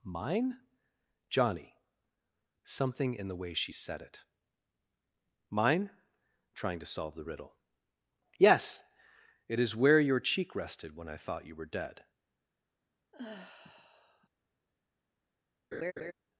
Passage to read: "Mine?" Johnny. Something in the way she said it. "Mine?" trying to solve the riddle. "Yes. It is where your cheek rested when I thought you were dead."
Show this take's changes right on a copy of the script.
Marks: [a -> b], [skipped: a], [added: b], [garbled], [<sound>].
"Mine?" Johnny. Something in the way she said it. "Mine?" trying to solve the riddle. "Yes. It is where your cheek rested when I thought you were dead." [sigh] [laugh]